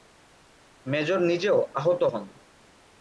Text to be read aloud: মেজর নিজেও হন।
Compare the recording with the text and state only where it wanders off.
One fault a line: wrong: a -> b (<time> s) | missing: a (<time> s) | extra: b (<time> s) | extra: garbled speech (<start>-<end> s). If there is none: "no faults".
extra: আহত (1.8 s)